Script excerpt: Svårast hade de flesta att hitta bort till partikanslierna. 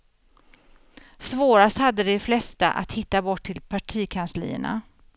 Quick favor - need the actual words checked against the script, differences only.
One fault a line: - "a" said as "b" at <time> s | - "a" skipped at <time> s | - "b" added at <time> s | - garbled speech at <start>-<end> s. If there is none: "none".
none